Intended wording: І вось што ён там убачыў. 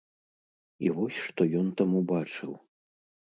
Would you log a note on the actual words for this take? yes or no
no